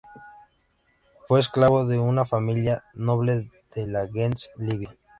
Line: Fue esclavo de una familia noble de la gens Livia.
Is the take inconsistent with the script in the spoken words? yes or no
no